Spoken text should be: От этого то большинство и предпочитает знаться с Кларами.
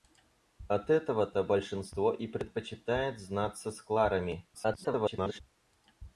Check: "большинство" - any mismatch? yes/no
no